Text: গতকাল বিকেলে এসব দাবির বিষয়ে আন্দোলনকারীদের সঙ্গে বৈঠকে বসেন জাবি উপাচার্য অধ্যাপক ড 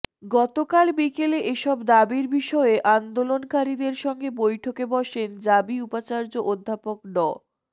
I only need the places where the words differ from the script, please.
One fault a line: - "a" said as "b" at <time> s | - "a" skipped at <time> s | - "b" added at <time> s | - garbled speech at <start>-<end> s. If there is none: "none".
none